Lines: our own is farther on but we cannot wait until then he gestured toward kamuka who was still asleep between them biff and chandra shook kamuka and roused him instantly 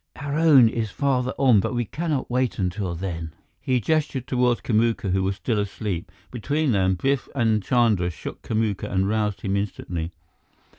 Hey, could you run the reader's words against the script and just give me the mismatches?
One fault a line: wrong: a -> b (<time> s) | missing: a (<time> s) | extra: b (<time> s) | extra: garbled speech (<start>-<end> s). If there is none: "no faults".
no faults